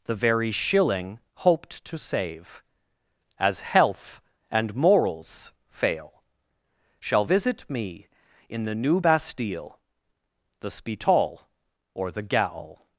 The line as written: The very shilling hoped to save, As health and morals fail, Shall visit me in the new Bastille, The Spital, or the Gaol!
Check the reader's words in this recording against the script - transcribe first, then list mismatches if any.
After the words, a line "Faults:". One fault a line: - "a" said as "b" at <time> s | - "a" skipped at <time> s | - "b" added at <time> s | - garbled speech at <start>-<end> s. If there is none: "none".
The very shilling hoped to save, As health and morals fail, Shall visit me in the new Bastille, The Spital, or the Gaol!
Faults:
none